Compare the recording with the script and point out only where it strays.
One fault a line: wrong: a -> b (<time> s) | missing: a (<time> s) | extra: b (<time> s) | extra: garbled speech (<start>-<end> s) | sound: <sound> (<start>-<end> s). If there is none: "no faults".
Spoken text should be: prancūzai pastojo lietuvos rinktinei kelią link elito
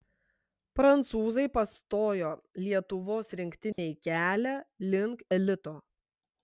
sound: dropout (3.7-3.8 s)